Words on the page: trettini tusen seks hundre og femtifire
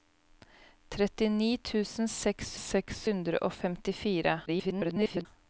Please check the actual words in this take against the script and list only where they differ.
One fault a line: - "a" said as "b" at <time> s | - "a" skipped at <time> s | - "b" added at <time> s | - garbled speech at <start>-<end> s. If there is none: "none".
- "seks" added at 2.6 s
- garbled speech at 4.5-5.3 s